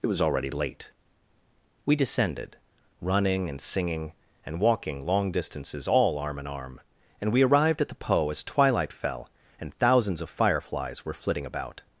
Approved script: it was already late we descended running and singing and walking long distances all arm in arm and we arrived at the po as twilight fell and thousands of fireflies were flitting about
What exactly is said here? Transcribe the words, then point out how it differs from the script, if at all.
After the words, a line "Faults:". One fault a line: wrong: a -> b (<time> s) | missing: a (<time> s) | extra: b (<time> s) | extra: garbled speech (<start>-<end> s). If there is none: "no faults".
it was already late we descended running and singing and walking long distances all arm in arm and we arrived at the po as twilight fell and thousands of fireflies were flitting about
Faults:
no faults